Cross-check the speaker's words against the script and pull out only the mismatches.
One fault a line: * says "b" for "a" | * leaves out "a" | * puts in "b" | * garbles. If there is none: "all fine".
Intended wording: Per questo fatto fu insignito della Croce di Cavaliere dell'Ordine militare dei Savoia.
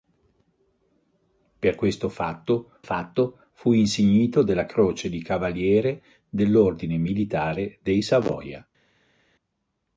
* puts in "fatto"